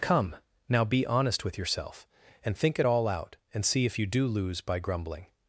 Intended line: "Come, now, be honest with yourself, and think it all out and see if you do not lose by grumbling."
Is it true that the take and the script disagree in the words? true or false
true